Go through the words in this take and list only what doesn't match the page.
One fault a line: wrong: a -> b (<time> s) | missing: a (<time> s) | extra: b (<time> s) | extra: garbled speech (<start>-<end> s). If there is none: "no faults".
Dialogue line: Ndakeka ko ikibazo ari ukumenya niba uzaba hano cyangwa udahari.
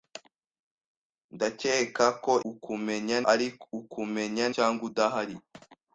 wrong: ikibazo -> ukumenya (2.5 s)
missing: niba uzaba hano (4.4 s)